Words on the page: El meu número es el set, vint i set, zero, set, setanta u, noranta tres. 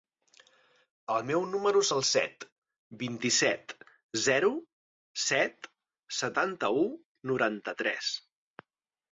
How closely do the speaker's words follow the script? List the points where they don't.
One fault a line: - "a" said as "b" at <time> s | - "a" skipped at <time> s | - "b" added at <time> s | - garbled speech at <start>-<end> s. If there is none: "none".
none